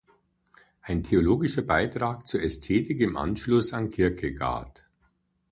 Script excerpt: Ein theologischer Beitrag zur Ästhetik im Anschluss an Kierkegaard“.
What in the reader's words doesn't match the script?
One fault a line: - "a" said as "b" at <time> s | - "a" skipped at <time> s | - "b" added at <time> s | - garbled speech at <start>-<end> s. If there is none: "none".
none